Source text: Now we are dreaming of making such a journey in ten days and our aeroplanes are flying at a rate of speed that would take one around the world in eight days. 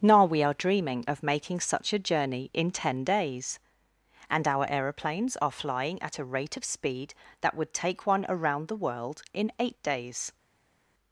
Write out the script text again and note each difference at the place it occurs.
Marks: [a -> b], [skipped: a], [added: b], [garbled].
Now we are dreaming of making such a journey in ten days and our aeroplanes are flying at a rate of speed that would take one around the world in eight days.